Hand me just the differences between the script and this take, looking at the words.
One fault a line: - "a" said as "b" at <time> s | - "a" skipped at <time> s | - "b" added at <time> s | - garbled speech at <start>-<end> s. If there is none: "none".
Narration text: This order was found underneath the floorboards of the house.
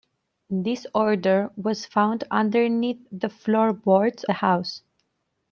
- "of" skipped at 4.2 s